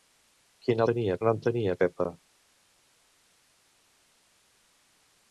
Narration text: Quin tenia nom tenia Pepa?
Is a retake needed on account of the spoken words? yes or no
no